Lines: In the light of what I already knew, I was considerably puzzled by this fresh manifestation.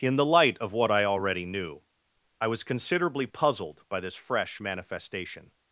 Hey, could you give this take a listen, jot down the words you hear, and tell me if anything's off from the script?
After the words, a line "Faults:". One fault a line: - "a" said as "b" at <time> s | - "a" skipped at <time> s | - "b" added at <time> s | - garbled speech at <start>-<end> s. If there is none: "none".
In the light of what I already knew, I was considerably puzzled by this fresh manifestation.
Faults:
none